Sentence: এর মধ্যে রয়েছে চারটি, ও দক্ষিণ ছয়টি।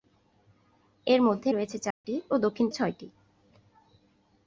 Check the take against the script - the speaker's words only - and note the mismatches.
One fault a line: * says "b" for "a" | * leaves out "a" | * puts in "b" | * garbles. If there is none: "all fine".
all fine